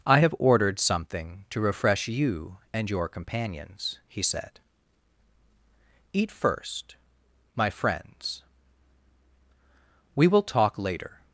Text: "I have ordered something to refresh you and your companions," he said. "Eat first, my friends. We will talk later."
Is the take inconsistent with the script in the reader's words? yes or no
no